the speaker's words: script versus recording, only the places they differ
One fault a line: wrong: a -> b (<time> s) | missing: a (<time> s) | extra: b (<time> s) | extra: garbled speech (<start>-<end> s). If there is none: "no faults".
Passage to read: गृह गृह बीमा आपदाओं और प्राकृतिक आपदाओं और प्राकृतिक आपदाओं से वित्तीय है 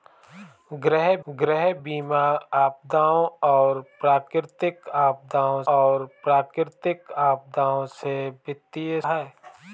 no faults